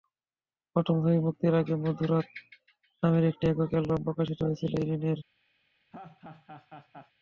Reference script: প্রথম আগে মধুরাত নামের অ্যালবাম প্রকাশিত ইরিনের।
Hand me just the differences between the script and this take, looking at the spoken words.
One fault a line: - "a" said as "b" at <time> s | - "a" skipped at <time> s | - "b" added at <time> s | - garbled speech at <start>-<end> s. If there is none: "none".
- "ছবি মুক্তির" added at 1.0 s
- "একটি একক" added at 3.3 s
- "হয়েছিল" added at 4.4 s